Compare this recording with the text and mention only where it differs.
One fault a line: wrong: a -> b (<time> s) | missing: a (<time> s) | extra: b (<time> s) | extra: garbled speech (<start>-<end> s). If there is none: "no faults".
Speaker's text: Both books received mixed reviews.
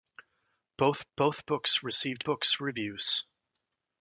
extra: both (1.2 s)
wrong: mixed -> books (2.2 s)